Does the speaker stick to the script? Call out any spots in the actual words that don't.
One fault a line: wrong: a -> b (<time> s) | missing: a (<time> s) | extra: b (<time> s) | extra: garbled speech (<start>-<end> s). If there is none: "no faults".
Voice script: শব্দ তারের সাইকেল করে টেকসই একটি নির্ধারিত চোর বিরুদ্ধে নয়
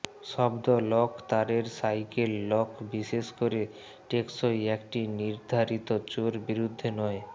extra: লক (0.9 s)
extra: লক বিশেষ (2.5 s)